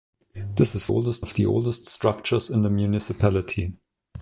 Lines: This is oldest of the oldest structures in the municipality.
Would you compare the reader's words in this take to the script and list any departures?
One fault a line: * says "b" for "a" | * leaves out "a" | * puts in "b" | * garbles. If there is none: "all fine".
all fine